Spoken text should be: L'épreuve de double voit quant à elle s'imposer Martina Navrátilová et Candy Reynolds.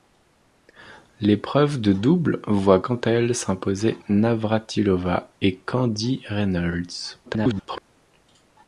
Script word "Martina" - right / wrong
wrong